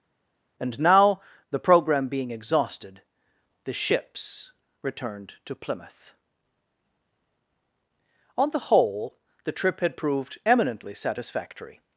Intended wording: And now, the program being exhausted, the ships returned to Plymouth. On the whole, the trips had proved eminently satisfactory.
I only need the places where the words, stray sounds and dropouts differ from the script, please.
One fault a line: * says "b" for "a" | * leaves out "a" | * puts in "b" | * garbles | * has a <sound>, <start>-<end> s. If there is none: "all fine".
* says "trip" for "trips"